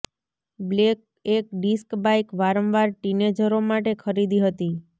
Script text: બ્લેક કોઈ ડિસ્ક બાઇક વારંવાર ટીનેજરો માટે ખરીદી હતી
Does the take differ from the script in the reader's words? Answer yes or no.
yes